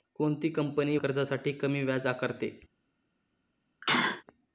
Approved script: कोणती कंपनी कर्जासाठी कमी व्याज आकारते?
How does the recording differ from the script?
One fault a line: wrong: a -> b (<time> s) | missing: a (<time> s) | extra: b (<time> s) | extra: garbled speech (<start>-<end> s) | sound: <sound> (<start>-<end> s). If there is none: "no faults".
sound: sneeze (3.8-4.2 s)